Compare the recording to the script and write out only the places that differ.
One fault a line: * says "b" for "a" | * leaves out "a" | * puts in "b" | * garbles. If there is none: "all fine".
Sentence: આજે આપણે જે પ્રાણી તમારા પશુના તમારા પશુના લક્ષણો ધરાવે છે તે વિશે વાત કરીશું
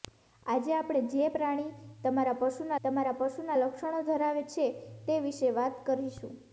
all fine